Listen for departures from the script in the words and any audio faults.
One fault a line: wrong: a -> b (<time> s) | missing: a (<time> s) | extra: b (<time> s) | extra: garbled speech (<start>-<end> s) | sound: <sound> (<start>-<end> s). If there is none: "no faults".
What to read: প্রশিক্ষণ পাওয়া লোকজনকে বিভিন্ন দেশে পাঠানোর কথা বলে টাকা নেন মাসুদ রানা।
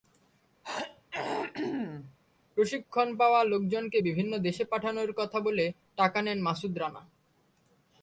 sound: throat clearing (0.6-2.2 s)